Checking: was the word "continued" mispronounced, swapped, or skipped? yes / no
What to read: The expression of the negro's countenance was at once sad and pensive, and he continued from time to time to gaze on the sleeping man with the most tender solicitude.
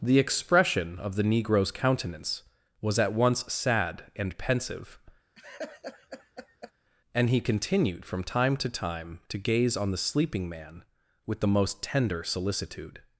no